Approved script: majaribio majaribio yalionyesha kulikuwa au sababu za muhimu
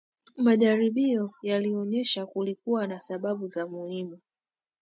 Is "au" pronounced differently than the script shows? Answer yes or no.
yes